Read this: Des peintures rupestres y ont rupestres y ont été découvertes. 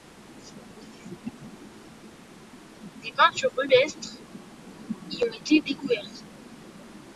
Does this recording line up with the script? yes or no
no